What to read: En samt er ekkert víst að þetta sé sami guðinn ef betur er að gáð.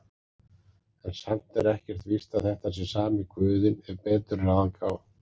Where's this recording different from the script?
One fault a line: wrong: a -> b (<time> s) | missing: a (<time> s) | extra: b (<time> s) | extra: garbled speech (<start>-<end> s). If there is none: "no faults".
no faults